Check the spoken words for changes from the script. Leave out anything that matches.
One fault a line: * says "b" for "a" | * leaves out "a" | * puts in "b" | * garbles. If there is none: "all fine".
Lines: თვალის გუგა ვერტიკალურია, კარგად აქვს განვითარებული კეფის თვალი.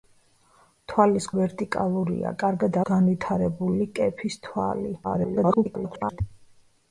* leaves out "გუგა"
* leaves out "აქვს"
* garbles